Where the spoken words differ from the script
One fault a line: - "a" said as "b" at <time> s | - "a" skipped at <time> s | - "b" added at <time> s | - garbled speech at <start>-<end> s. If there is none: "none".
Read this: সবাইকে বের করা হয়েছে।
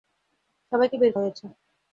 - "করা" skipped at 1.1 s